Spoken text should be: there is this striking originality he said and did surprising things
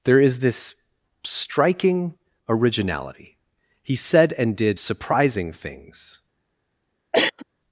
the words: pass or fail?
pass